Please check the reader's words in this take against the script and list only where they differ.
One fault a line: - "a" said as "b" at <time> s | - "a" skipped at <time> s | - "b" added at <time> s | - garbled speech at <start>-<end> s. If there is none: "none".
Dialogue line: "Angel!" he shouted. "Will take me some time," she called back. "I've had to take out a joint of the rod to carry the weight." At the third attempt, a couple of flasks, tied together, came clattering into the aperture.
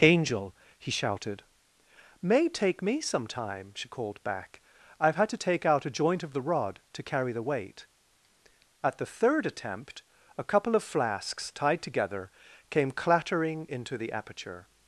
- "Will" said as "May" at 2.2 s